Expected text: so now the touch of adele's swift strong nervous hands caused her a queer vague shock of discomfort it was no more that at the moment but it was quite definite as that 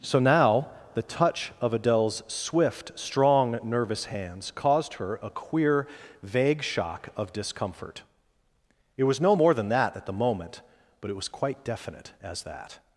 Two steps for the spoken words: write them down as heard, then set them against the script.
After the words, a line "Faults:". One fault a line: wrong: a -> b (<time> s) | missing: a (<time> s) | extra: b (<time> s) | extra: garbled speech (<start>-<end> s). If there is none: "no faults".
so now the touch of adele's swift strong nervous hands caused her a queer vague shock of discomfort it was no more than that at the moment but it was quite definite as that
Faults:
extra: than (9.5 s)